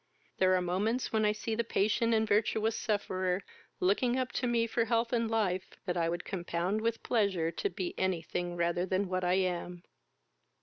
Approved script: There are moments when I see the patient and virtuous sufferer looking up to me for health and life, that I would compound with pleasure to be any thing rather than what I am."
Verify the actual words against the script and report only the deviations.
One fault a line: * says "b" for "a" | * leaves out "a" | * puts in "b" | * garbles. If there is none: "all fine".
all fine